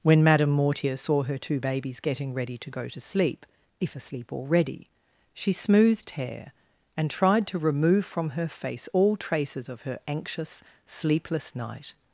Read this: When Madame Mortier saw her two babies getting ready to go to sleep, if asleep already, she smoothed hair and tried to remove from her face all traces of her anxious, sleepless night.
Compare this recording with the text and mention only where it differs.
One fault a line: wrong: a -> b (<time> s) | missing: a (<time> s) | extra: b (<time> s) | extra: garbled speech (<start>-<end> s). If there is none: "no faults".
no faults